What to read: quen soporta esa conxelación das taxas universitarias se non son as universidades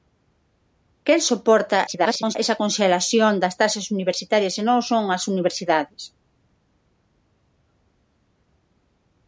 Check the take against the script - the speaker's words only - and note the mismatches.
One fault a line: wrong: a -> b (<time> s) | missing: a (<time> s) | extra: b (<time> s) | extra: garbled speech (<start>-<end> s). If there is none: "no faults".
extra: garbled speech (1.9-2.4 s)